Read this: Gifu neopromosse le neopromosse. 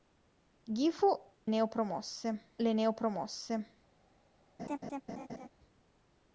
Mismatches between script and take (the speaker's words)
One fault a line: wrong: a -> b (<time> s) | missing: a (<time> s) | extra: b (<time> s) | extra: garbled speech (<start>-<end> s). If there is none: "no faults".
no faults